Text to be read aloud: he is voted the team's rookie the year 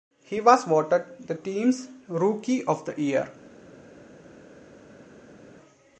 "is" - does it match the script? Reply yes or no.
no